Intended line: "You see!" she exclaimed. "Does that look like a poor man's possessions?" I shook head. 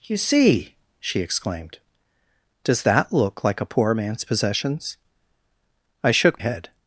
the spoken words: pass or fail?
pass